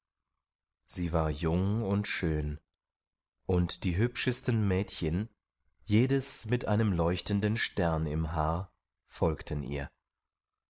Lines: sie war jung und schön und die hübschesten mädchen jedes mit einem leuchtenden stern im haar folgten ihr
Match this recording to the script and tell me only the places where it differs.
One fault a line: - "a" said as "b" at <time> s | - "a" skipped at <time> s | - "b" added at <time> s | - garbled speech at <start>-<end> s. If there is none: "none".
none